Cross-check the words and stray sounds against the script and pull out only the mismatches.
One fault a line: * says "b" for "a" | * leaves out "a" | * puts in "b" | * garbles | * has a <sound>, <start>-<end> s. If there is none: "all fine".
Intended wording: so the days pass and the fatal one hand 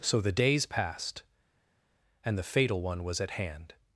* says "passed" for "pass"
* puts in "was at"